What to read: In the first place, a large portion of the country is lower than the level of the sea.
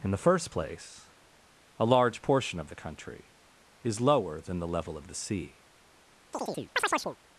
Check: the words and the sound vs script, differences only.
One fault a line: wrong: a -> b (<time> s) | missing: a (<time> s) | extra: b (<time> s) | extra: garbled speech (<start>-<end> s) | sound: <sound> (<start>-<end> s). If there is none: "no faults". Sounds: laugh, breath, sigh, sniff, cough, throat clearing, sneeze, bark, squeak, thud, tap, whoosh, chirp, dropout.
sound: chirp (6.3-7.2 s)